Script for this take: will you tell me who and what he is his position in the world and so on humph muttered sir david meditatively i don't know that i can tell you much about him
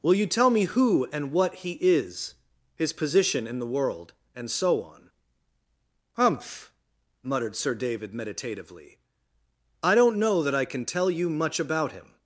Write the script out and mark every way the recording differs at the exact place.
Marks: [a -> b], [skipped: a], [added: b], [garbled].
will you tell me who and what he is his position in the world and so on humph muttered sir david meditatively i don't know that i can tell you much about him